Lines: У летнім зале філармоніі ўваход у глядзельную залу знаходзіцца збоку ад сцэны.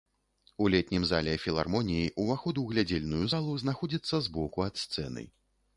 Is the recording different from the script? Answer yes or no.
no